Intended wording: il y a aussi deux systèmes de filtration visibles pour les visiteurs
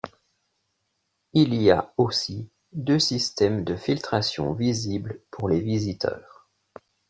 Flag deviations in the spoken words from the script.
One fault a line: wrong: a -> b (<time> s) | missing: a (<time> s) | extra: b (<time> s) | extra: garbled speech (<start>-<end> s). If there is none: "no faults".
no faults